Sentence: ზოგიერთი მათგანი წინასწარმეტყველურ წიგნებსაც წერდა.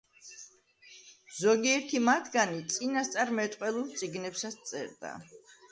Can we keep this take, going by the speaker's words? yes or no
yes